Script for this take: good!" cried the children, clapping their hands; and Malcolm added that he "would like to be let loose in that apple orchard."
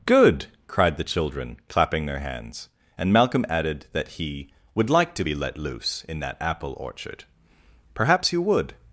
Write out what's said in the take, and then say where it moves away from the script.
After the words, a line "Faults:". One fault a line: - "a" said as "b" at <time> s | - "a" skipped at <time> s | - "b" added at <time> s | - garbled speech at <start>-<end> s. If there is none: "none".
good!" cried the children, clapping their hands; and Malcolm added that he "would like to be let loose in that apple orchard." "Perhaps you would
Faults:
- "Perhaps you would" added at 7.9 s